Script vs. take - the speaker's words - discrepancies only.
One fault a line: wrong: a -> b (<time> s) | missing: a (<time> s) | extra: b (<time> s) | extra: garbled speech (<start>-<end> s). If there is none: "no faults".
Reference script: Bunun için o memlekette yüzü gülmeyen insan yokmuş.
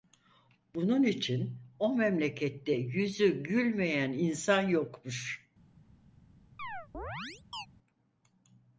no faults